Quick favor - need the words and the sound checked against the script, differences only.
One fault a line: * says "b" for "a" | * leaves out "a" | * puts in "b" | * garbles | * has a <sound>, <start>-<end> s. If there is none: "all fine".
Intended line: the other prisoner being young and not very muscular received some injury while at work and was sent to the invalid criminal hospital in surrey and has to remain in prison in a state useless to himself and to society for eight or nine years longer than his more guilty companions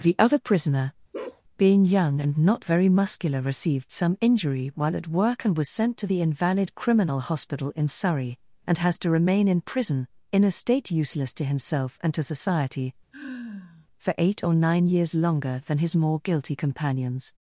* has a bark, 1.1-1.4 s
* has a sigh, 13.1-13.9 s